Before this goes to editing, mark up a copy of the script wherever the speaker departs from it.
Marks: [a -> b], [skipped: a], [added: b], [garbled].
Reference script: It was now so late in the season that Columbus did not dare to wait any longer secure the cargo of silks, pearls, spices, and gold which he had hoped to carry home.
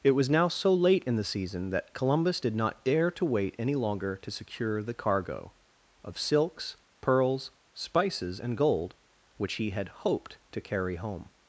It was now so late in the season that Columbus did not dare to wait any longer [added: to] secure the cargo of silks, pearls, spices, and gold which he had hoped to carry home.